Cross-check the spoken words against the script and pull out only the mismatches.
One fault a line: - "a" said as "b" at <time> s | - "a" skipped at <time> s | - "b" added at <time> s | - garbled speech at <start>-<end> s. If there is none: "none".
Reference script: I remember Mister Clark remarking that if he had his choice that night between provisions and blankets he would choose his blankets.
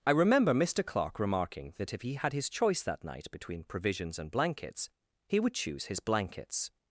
none